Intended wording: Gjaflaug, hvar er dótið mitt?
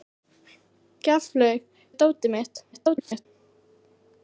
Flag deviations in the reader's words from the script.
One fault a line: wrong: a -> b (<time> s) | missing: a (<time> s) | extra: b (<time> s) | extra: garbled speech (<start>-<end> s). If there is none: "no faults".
missing: hvar (1.7 s)
extra: garbled speech (2.7-3.3 s)